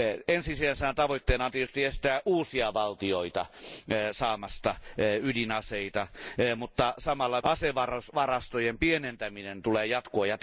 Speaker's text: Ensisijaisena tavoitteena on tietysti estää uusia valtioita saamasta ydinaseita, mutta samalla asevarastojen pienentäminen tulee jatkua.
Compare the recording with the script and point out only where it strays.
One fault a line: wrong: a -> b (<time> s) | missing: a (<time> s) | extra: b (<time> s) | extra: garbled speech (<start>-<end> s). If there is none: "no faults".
no faults